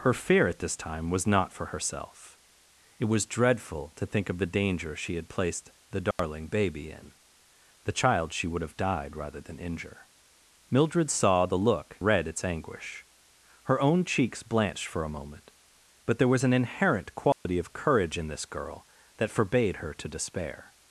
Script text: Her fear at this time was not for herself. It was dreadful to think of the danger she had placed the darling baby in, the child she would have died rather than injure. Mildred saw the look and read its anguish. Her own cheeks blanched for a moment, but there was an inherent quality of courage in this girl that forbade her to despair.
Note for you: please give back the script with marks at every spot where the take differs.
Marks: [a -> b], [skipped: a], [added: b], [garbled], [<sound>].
Her fear at this time was not for herself. It was dreadful to think of the danger she had placed the darling [dropout] baby in, the child she would have died rather than injure. Mildred saw the look [skipped: and] read its anguish. Her own cheeks blanched for a moment, but there was an inherent quality [dropout] of courage in this girl that forbade her to despair.